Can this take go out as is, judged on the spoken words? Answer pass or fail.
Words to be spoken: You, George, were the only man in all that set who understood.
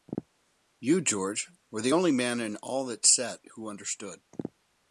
pass